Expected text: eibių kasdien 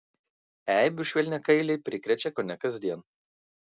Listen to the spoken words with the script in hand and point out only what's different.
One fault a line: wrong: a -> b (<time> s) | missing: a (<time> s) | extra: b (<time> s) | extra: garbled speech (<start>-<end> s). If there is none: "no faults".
extra: švelniakailiai prikrečia kone (1.1 s)